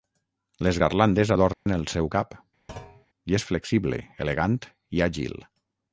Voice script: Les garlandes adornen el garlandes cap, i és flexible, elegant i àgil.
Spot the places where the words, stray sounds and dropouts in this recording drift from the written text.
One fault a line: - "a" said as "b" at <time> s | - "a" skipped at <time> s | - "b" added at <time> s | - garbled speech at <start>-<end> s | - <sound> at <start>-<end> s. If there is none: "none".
- dropout at 1.5-1.7 s
- "garlandes" said as "seu" at 1.9 s
- thud at 2.7-3.1 s